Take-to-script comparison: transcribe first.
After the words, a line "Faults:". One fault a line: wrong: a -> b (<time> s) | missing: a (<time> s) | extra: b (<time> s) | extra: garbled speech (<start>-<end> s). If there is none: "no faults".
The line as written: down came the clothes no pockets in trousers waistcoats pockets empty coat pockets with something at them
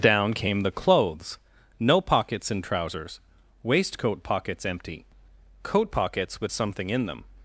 down came the clothes no pockets in trousers waistcoat pockets empty coat pockets with something in them
Faults:
wrong: waistcoats -> waistcoat (3.6 s)
wrong: at -> in (6.9 s)